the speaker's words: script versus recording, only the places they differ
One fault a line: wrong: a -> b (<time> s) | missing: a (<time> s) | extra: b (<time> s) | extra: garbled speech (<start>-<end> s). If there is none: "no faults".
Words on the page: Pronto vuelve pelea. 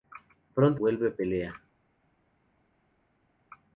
no faults